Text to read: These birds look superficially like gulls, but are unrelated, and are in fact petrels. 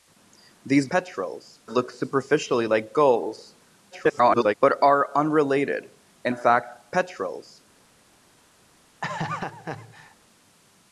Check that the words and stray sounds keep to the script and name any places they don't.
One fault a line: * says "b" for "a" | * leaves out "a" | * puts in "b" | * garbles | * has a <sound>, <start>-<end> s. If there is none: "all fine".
* says "petrels" for "birds"
* garbles
* leaves out "are"
* has a laugh, 9.0-10.2 s